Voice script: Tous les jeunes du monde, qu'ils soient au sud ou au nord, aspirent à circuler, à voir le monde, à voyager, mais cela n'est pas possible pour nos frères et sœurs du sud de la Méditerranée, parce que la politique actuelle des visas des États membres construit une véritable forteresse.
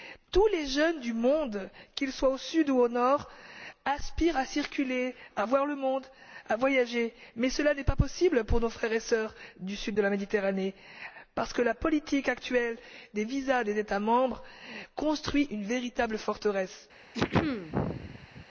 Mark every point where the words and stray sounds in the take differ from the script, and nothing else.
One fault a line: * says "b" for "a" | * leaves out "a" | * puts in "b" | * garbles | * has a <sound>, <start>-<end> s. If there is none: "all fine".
* has a throat clearing, 17.1-18.5 s